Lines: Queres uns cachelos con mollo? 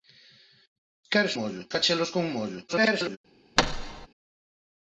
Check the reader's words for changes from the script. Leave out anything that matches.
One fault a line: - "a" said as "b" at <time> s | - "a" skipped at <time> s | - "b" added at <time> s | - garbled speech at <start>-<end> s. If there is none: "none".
- "uns" said as "mollo" at 1.4 s
- garbled speech at 2.7-3.2 s